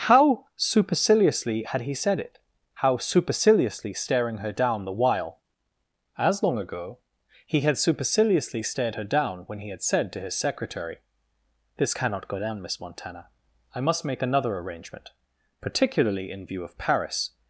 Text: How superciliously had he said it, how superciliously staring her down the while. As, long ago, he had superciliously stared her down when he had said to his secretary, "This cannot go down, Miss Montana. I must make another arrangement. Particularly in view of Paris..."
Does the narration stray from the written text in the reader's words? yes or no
no